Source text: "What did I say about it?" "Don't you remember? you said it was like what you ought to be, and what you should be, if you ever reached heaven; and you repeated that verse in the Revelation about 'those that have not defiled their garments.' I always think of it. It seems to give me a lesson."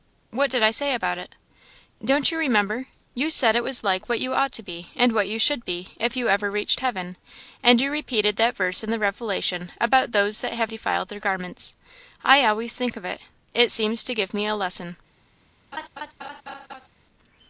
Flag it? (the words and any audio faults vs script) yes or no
yes